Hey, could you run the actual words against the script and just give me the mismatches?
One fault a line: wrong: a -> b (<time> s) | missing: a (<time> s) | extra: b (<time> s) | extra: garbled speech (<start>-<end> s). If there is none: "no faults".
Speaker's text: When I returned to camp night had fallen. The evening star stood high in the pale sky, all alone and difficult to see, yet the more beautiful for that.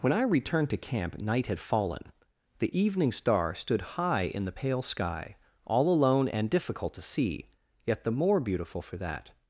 no faults